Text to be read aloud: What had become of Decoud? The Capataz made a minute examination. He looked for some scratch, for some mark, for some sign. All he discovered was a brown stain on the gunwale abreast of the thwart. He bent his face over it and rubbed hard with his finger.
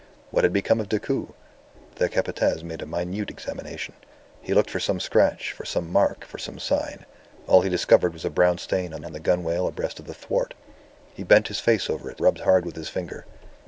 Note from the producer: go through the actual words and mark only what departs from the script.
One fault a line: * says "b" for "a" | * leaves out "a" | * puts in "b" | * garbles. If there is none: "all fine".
* puts in "on"
* leaves out "and"